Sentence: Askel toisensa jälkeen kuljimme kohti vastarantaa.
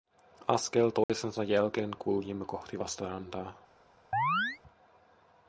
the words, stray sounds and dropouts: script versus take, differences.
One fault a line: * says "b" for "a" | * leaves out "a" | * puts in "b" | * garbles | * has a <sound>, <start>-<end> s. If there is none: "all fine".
* has a dropout, 1.0-1.1 s
* has a chirp, 4.1-4.6 s